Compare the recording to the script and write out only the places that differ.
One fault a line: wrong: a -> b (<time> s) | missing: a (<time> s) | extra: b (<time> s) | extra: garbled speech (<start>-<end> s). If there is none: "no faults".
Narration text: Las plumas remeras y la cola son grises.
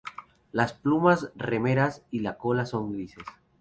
no faults